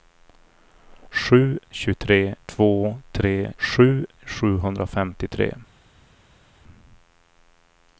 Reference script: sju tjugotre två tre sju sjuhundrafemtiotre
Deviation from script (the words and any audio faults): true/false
false